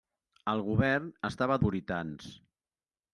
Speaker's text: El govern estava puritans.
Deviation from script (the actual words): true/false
false